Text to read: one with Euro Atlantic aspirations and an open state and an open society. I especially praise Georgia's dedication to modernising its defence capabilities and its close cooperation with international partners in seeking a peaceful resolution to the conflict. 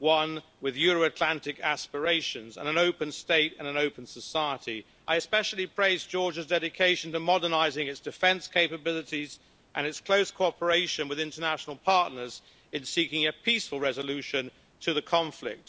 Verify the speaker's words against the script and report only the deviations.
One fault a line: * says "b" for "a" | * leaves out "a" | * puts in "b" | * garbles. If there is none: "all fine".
all fine